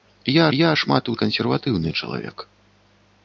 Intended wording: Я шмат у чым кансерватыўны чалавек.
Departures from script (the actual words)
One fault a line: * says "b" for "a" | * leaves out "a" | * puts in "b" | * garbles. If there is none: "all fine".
* puts in "я"
* leaves out "чым"